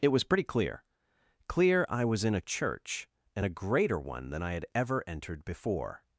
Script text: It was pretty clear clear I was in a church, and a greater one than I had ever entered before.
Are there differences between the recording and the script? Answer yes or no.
no